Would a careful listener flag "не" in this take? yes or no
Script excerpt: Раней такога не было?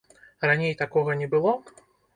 no